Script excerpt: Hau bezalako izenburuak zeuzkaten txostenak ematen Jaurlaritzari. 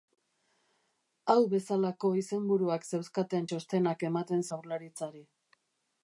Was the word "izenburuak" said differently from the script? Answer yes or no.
no